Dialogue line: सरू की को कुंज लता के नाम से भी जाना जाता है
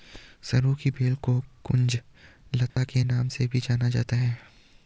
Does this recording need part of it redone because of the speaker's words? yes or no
yes